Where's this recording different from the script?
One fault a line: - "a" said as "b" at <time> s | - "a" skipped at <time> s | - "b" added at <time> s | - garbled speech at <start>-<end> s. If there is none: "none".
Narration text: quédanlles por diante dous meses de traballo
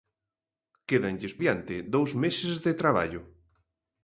- "por" skipped at 1.4 s